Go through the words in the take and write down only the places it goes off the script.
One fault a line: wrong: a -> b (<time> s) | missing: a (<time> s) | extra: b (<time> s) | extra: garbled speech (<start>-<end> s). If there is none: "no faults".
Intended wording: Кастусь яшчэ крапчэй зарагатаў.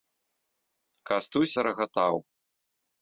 missing: яшчэ крапчэй (1.5 s)